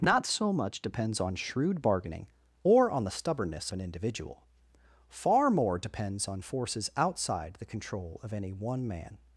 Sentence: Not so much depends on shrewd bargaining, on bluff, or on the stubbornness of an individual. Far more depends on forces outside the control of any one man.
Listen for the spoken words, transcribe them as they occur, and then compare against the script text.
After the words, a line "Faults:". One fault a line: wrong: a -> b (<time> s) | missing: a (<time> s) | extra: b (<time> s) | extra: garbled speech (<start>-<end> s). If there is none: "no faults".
Not so much depends on shrewd bargaining, or on the stubbornness an individual. Far more depends on forces outside the control of any one man.
Faults:
missing: on bluff (2.2 s)
missing: of (3.7 s)